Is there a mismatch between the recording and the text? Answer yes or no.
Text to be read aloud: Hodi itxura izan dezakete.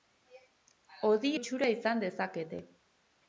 no